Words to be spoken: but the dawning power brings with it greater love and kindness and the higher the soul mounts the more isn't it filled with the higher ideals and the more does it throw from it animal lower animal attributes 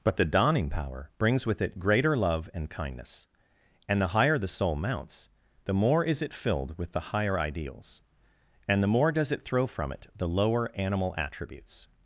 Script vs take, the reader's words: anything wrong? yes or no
yes